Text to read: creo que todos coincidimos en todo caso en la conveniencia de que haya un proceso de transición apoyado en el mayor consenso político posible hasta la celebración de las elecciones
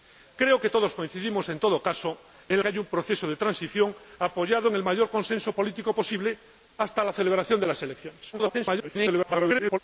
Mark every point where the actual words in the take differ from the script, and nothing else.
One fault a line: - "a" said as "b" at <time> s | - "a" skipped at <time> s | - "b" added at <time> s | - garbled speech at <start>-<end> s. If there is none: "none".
- "la conveniencia de" skipped at 2.6 s
- garbled speech at 8.3-9.8 s